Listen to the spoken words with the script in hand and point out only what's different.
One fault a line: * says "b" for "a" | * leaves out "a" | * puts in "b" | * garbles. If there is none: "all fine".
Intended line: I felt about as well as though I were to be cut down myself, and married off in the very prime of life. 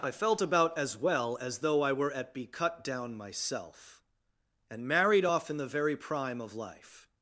* says "at" for "to"